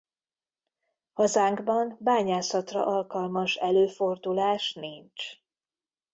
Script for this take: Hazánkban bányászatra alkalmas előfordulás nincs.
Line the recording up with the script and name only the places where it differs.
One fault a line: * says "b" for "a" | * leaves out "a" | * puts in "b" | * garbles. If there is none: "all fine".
all fine